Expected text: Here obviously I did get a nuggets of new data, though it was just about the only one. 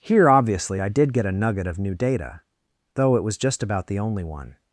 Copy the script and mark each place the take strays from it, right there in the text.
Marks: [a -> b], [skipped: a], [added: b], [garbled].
Here obviously I did get a [nuggets -> nugget] of new data, though it was just about the only one.